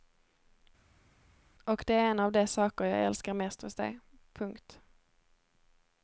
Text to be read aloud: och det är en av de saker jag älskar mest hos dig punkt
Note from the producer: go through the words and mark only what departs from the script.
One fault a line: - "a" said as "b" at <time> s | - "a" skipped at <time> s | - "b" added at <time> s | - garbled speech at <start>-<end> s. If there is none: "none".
none